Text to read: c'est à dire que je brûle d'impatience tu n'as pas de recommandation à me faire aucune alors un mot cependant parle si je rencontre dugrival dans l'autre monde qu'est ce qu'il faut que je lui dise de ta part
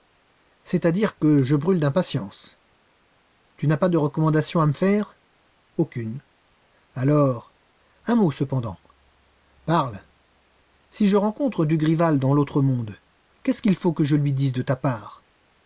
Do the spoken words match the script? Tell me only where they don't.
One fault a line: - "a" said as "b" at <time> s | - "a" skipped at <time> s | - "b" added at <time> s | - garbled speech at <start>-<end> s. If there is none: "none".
none